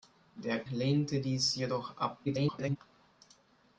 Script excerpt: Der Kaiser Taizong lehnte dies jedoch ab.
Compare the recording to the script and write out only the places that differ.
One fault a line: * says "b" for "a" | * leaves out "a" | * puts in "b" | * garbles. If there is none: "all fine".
* leaves out "Kaiser Taizong"
* garbles